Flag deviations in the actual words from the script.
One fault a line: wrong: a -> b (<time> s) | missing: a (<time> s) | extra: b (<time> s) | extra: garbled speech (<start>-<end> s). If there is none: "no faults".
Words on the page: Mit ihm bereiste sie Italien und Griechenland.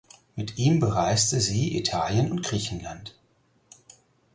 no faults